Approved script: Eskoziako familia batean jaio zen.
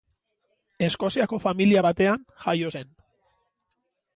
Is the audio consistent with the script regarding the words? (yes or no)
yes